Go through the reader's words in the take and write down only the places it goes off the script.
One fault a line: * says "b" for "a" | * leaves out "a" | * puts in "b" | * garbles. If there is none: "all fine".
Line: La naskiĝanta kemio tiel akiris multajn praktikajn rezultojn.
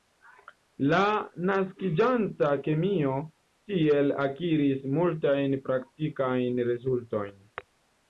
all fine